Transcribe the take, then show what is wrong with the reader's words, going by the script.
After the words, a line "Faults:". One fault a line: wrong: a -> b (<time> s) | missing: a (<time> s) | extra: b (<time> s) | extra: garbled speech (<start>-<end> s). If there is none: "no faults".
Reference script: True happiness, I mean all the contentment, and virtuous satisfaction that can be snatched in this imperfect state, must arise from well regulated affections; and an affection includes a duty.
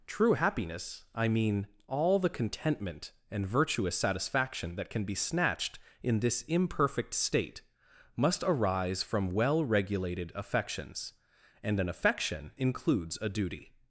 True happiness, I mean all the contentment, and virtuous satisfaction that can be snatched in this imperfect state, must arise from well regulated affections; and an affection includes a duty.
Faults:
no faults